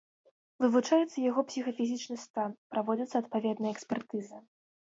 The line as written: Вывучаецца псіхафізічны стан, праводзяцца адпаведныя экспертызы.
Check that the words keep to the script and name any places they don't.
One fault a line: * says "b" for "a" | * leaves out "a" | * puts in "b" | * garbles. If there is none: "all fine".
* puts in "яго"